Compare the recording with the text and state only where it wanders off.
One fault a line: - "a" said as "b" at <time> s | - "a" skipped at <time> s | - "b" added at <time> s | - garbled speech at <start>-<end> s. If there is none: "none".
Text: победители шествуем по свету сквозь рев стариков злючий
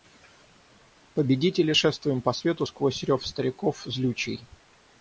none